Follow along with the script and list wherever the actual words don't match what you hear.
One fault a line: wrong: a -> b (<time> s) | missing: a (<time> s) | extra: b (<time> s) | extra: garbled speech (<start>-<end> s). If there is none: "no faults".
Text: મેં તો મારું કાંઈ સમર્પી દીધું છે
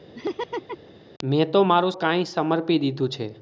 no faults